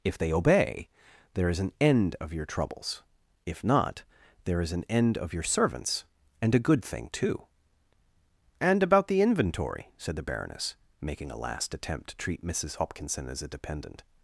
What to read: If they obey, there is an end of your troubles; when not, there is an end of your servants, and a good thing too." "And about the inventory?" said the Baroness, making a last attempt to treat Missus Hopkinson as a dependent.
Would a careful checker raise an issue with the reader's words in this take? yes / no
yes